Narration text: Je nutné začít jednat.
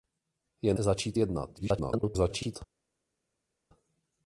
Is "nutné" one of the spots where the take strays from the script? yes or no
yes